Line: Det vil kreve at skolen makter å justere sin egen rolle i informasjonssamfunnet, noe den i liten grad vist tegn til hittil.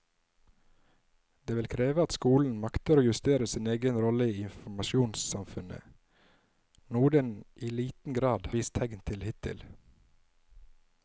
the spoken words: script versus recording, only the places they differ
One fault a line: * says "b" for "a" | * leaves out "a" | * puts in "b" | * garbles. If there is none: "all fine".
all fine